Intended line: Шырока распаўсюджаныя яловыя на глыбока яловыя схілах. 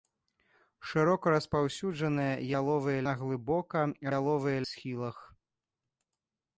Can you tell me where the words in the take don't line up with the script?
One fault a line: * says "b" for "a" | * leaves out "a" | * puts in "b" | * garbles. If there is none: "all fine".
all fine